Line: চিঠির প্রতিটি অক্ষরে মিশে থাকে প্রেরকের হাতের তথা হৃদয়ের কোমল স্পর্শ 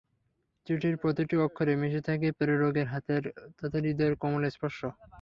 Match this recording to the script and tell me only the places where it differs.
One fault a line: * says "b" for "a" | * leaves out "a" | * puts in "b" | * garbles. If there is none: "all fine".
all fine